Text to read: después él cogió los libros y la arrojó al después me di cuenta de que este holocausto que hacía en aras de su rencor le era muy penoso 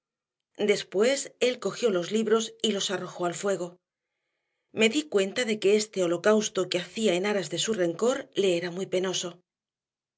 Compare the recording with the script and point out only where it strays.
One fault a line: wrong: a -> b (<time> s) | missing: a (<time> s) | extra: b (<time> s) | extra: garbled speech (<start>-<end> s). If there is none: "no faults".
wrong: la -> los (2.7 s)
wrong: después -> fuego (3.4 s)